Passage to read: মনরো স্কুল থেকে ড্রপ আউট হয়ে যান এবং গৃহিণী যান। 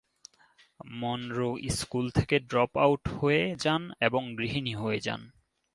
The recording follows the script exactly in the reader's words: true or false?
false